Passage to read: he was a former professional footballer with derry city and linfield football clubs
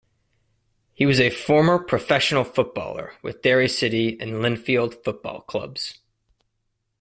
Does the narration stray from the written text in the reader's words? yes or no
no